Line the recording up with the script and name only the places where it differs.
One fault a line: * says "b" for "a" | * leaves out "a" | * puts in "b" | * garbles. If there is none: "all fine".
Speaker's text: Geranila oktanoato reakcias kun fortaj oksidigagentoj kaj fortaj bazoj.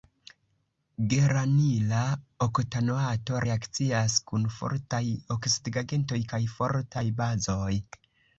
all fine